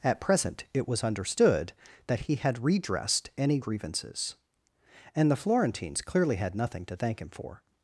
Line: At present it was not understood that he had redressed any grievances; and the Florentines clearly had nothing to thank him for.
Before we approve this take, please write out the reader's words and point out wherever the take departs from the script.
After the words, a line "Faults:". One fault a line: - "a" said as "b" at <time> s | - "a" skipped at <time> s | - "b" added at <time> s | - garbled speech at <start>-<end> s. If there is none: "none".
At present it was understood that he had redressed any grievances; and the Florentines clearly had nothing to thank him for.
Faults:
- "not" skipped at 1.0 s